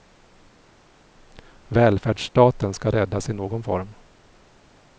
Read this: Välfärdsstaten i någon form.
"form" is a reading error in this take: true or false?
false